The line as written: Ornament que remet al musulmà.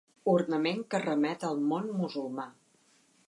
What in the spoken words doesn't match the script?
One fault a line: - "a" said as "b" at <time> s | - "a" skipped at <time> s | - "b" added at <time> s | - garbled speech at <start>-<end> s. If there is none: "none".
- "món" added at 1.7 s